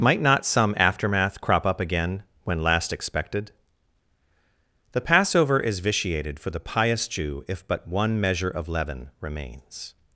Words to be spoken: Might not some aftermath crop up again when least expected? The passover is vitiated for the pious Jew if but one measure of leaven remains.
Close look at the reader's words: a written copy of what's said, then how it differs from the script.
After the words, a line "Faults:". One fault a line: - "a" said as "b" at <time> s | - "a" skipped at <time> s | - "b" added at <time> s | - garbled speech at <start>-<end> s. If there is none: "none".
Might not some aftermath crop up again when last expected? The passover is vitiated for the pious Jew if but one measure of leaven remains.
Faults:
- "least" said as "last" at 2.6 s